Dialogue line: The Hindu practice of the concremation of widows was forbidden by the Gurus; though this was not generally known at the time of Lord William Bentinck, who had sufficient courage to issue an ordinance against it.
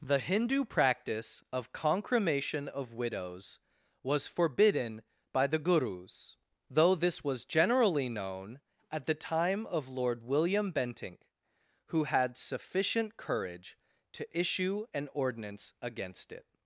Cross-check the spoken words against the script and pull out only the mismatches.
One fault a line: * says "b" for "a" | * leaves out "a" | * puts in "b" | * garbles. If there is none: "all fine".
* leaves out "the"
* leaves out "not"